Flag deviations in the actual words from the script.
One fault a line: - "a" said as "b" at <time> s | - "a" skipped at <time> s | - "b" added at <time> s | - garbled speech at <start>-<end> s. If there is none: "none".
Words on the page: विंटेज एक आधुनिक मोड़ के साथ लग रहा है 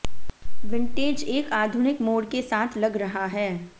none